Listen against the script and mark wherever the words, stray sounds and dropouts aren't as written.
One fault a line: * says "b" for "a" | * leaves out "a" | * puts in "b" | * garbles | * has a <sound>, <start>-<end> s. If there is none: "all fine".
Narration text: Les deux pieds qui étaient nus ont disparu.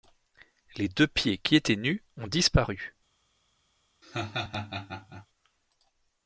* has a laugh, 4.0-5.3 s